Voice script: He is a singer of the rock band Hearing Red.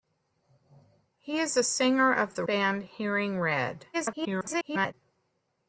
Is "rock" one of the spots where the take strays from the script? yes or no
yes